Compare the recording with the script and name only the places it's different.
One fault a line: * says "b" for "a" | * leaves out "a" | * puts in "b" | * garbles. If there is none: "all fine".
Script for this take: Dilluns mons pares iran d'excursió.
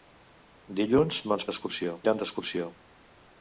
* says "d'excursió" for "pares"